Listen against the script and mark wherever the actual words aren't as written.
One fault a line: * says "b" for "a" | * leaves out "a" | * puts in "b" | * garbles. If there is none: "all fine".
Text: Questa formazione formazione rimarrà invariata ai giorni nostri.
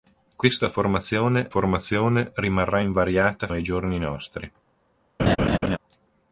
all fine